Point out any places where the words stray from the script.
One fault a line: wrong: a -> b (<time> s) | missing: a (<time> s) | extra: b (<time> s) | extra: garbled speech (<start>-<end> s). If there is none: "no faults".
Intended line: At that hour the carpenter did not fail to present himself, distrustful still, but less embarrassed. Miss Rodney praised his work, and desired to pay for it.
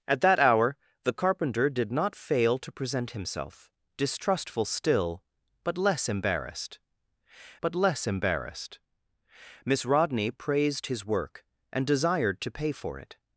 extra: but less embarrassed (7.6 s)